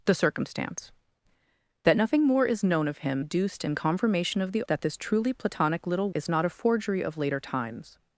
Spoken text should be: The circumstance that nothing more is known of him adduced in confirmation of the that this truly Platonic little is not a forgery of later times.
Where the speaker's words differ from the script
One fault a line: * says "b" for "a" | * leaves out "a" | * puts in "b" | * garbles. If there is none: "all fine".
all fine